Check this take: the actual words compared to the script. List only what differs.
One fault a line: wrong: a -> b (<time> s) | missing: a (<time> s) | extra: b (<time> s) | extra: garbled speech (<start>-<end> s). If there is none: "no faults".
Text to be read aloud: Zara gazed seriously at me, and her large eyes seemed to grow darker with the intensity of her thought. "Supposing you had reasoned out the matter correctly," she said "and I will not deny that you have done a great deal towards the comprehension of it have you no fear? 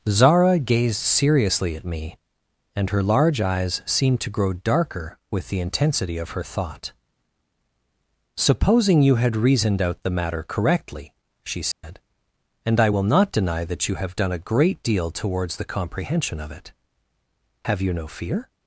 no faults